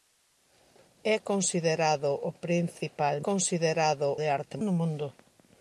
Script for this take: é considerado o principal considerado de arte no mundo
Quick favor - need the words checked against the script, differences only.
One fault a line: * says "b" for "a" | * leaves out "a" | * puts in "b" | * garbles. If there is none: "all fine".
all fine